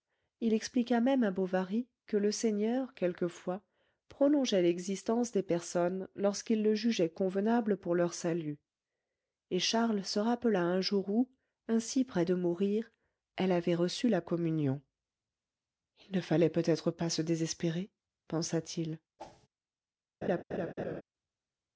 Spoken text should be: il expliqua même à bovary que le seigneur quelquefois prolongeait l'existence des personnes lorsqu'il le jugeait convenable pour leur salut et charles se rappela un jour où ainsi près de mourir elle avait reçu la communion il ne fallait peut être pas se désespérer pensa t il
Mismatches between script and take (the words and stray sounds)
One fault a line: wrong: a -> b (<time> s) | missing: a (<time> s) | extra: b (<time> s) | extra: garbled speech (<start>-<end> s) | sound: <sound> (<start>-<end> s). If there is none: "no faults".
sound: whoosh (19.2-19.5 s)
sound: laugh (20.2-21.0 s)